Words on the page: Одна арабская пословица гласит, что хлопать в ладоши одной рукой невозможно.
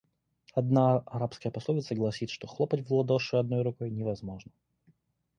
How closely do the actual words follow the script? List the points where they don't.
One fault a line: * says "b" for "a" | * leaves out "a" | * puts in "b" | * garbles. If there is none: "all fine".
all fine